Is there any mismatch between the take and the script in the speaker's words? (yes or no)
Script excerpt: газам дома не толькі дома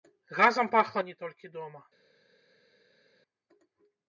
yes